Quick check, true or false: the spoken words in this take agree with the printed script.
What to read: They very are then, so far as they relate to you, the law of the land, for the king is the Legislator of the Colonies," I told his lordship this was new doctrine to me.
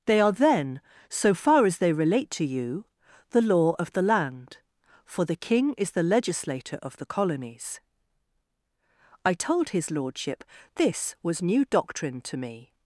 false